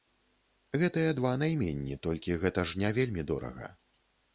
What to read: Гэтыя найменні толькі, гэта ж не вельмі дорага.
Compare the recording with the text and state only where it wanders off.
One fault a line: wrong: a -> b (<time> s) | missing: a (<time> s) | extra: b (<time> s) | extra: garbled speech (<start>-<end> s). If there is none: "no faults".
extra: два (1.2 s)